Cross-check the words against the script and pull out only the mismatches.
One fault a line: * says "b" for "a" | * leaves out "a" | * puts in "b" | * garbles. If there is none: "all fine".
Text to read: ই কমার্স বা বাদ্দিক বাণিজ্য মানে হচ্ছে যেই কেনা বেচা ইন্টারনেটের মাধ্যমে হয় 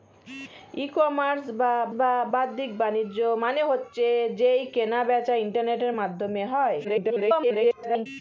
* puts in "বা"
* garbles